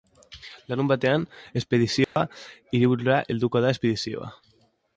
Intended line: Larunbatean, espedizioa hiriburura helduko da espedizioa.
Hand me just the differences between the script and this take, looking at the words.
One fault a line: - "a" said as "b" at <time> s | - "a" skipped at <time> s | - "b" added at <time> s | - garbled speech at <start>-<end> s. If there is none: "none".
none